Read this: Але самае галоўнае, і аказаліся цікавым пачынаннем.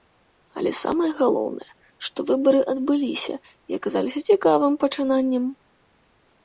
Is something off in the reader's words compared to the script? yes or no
yes